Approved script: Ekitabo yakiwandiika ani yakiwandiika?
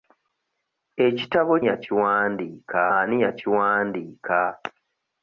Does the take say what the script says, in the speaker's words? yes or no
yes